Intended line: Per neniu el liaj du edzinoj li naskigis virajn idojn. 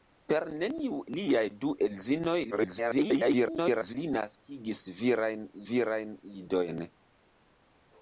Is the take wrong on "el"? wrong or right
wrong